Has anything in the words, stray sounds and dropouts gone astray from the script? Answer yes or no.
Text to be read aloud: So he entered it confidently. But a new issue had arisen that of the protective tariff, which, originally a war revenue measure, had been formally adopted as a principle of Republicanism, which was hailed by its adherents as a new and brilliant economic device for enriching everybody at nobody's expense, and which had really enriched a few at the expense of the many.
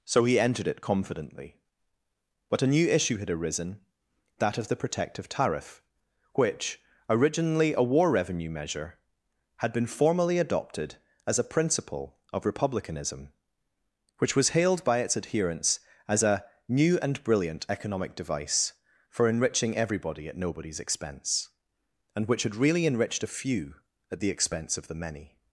no